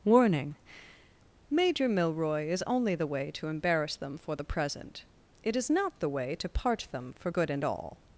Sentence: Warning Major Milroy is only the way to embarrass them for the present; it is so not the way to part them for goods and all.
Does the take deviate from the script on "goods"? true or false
true